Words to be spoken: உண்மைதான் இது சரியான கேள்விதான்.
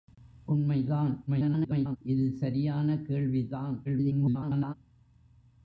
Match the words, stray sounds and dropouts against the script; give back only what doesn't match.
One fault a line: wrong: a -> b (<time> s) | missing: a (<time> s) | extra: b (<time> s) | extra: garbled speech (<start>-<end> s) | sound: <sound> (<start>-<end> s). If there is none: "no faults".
extra: garbled speech (1.3-2.0 s)
extra: garbled speech (3.8-4.7 s)